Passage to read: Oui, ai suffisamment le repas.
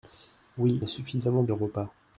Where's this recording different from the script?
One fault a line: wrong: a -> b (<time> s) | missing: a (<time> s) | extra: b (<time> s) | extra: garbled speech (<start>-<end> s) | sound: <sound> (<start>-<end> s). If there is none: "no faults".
no faults